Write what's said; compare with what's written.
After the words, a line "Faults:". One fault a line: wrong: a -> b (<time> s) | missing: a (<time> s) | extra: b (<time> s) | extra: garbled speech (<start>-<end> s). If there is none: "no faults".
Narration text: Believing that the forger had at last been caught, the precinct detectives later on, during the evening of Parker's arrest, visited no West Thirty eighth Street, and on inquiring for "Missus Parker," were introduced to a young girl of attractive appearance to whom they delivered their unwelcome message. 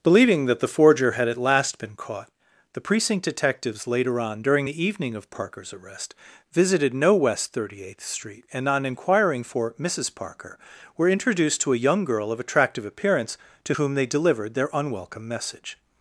Believing that the forger had at last been caught, the precinct detectives later on, during the evening of Parker's arrest, visited no West Thirty eighth Street, and on inquiring for "Missus Parker," were introduced to a young girl of attractive appearance to whom they delivered their unwelcome message.
Faults:
no faults